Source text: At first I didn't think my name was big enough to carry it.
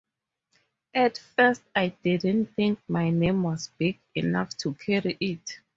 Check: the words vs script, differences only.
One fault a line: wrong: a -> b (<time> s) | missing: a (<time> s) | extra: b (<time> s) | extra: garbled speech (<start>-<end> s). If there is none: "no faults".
no faults